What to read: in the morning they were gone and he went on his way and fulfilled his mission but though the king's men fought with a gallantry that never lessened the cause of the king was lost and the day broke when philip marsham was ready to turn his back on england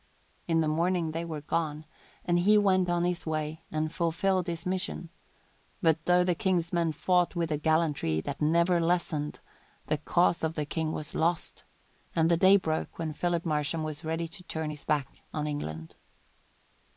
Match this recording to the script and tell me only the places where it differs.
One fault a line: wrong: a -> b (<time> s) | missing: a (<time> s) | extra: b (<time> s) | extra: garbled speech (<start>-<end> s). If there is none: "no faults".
no faults